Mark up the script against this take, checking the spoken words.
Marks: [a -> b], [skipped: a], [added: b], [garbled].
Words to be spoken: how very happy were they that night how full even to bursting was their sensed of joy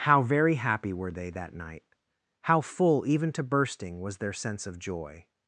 how very happy were they that night how full even to bursting was their [sensed -> sense] of joy